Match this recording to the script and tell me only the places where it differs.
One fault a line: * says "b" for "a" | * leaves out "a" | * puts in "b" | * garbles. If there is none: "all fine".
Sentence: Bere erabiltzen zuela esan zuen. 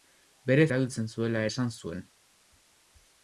all fine